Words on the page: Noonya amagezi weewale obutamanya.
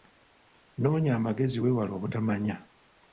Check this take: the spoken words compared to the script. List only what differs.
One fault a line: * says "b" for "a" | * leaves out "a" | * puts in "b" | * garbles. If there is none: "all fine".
all fine